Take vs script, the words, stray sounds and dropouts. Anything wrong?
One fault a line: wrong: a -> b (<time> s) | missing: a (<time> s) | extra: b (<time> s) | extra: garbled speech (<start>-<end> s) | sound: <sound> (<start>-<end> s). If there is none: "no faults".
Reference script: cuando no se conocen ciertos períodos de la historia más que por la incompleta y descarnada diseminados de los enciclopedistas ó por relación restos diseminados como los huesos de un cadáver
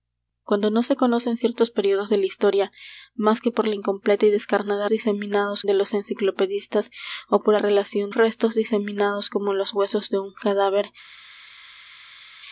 no faults